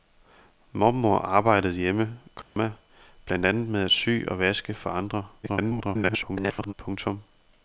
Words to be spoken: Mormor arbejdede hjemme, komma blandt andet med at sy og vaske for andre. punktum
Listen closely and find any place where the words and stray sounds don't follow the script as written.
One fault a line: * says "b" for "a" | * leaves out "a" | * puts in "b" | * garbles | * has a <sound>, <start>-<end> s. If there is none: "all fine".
* has a dropout, 2.4-2.6 s
* garbles